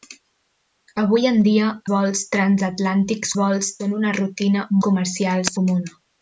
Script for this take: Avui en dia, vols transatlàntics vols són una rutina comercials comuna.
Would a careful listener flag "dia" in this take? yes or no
no